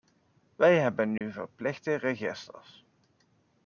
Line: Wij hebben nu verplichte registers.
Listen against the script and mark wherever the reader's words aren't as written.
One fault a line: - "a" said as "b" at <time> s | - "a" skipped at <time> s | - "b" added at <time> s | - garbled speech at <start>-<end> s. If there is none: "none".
none